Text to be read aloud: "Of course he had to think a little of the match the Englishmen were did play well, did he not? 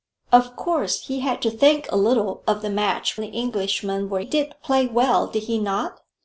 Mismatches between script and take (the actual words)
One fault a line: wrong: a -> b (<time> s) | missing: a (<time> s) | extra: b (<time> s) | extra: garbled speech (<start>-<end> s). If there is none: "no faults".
no faults